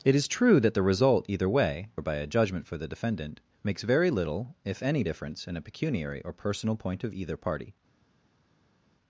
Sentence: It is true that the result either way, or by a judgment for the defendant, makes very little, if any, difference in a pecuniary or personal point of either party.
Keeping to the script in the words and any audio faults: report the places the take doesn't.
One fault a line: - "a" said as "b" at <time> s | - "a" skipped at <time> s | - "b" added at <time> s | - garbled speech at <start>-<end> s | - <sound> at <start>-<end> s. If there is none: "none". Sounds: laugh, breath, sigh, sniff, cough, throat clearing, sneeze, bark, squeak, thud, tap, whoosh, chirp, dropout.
none